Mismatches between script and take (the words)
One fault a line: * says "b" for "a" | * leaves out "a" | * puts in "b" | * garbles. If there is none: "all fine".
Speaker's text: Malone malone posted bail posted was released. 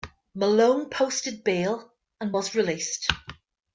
* leaves out "malone"
* says "and" for "posted"